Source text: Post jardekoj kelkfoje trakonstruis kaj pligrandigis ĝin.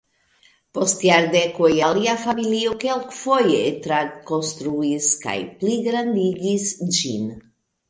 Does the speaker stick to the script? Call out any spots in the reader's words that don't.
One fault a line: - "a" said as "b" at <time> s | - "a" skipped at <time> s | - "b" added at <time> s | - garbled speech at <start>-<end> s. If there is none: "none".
- "alia familio" added at 1.9 s